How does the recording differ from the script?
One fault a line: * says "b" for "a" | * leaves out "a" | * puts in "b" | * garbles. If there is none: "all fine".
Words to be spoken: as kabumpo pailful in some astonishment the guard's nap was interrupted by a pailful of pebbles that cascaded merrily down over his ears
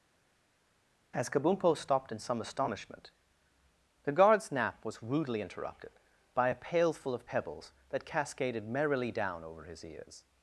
* says "stopped" for "pailful"
* puts in "rudely"